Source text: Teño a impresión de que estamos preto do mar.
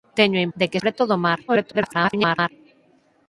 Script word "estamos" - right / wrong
wrong